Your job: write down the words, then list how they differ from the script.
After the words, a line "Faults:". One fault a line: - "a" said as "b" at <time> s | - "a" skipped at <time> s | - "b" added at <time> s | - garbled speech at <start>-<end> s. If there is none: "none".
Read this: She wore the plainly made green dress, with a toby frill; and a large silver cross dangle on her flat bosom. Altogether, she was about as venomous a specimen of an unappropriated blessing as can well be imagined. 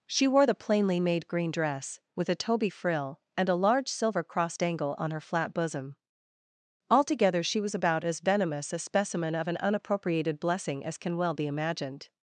She wore the plainly made green dress, with a toby frill; and a large silver cross dangle on her flat bosom. Altogether, she was about as venomous a specimen of an unappropriated blessing as can well be imagined.
Faults:
none